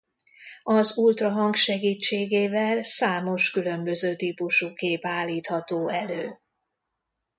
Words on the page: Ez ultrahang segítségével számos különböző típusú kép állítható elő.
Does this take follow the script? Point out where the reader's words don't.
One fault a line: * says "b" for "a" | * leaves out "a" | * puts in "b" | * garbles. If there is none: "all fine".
* says "Az" for "Ez"